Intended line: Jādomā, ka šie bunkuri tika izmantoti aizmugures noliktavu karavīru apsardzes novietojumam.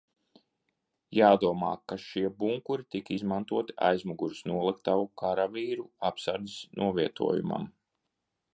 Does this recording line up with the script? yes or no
yes